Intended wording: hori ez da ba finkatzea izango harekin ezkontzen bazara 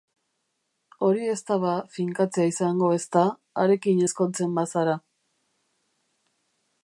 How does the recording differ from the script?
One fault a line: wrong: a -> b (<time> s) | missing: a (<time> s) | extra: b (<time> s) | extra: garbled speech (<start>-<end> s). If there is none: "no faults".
extra: ezta (3.0 s)